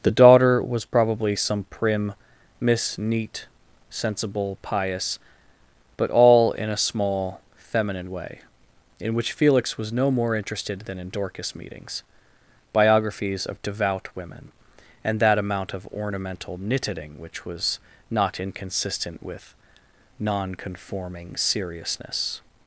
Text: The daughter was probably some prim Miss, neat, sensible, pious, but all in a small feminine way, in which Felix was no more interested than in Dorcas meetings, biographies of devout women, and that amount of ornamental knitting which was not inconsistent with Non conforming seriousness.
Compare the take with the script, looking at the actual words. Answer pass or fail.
pass